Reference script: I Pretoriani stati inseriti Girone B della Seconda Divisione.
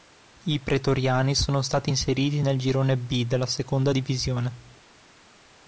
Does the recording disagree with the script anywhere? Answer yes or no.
yes